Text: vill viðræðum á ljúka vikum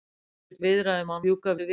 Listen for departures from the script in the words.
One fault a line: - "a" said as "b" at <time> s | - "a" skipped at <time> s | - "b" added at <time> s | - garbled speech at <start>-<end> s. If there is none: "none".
none